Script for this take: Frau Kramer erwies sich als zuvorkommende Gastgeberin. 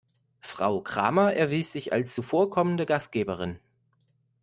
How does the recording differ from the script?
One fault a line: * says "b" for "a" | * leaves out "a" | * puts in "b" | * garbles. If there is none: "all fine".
all fine